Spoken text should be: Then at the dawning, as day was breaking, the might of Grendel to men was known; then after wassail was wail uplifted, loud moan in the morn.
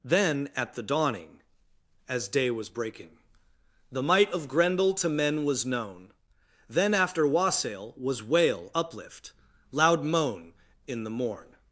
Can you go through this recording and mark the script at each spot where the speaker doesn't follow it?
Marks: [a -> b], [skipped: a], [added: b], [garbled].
Then at the dawning, as day was breaking, the might of Grendel to men was known; then after wassail was wail [uplifted, -> uplift] loud moan in the morn.